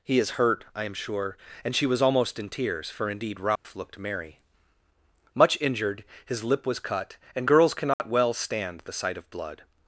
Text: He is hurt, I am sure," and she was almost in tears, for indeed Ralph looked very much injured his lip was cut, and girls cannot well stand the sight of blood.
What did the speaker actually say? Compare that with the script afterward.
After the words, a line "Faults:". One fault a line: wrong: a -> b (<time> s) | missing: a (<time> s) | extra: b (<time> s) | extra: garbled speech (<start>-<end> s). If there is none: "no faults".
He is hurt, I am sure," and she was almost in tears, for indeed Ralph looked merry much injured his lip was cut, and girls cannot well stand the sight of blood.
Faults:
wrong: very -> merry (4.0 s)